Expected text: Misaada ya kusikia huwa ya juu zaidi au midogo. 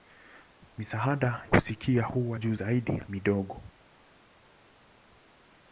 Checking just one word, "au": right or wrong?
wrong